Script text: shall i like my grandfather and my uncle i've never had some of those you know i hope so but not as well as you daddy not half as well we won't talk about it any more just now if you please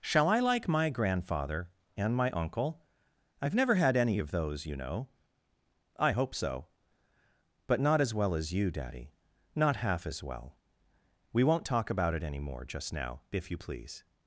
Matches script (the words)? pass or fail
fail